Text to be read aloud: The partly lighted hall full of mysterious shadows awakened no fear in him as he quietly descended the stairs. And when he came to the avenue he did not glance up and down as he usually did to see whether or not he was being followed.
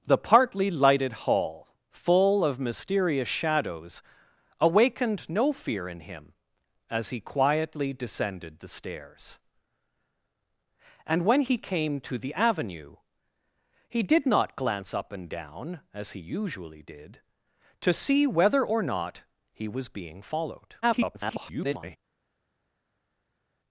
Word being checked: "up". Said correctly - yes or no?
yes